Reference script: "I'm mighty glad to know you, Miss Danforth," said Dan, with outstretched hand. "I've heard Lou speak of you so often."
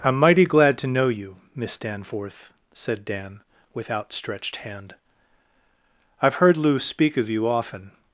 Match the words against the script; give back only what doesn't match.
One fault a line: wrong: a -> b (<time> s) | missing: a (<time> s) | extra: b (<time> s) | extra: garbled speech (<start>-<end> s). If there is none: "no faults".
missing: so (7.5 s)